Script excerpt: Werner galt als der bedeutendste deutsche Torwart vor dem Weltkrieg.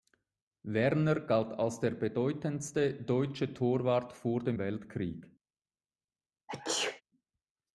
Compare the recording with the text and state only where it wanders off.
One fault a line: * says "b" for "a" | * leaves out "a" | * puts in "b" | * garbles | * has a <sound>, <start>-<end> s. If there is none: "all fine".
* has a sneeze, 6.5-7.0 s